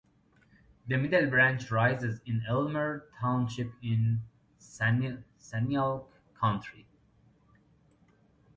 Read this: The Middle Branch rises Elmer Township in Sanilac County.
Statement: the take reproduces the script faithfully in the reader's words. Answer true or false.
false